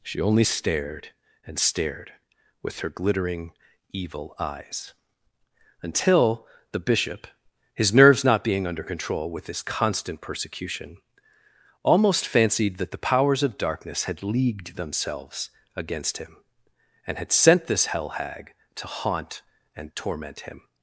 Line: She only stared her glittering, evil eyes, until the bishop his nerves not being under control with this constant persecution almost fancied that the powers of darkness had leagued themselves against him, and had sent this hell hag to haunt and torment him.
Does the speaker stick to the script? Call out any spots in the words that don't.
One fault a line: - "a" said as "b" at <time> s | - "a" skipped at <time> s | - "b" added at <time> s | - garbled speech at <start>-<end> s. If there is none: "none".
- "and stared with" added at 1.4 s